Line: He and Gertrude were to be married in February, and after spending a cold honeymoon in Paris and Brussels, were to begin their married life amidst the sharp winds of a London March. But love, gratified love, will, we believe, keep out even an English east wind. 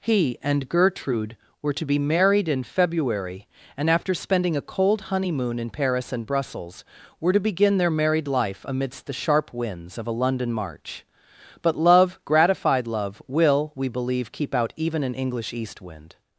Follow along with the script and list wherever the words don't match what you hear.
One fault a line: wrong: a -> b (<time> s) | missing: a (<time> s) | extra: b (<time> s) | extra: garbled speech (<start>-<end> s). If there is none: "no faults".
no faults